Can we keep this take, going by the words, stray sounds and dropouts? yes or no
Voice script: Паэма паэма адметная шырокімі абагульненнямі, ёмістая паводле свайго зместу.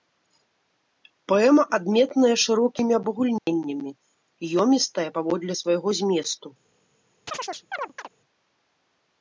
no